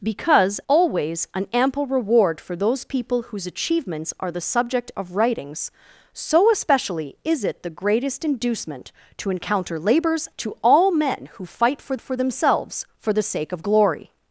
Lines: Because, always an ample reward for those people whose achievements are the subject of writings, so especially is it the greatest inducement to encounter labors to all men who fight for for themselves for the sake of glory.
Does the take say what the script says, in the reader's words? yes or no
yes